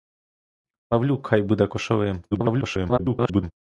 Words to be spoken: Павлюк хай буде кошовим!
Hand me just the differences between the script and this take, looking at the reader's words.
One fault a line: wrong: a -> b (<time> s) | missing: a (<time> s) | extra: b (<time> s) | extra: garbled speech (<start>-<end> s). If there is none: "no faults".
extra: garbled speech (2.3-3.5 s)